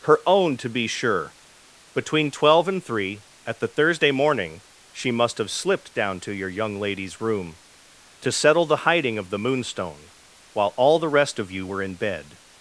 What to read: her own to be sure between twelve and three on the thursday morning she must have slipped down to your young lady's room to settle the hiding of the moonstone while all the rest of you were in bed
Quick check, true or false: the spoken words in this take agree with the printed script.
false